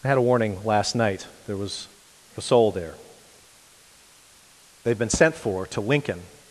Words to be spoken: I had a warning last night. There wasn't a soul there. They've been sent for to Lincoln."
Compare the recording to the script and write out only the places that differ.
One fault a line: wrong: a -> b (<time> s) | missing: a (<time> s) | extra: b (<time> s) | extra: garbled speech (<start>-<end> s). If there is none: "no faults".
wrong: wasn't -> was (1.6 s)